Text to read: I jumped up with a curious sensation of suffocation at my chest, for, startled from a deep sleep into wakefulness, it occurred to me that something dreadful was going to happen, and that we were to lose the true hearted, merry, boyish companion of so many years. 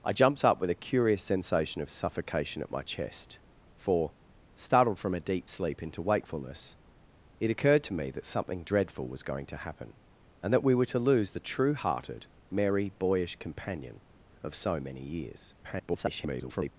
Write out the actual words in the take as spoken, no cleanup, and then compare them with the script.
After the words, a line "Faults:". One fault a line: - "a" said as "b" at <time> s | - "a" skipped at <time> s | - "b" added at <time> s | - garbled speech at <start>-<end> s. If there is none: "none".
I jumped up with a curious sensation of suffocation at my chest, for, startled from a deep sleep into wakefulness, it occurred to me that something dreadful was going to happen, and that we were to lose the true hearted, merry, boyish companion of so many years. [garbled]
Faults:
- garbled speech at 15.6-16.7 s